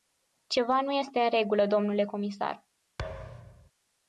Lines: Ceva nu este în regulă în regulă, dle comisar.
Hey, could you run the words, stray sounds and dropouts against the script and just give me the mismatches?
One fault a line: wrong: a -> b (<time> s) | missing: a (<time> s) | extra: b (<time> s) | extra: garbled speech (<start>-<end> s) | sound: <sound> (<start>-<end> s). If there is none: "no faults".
missing: în regulă (1.6 s)
sound: thud (3.0-3.7 s)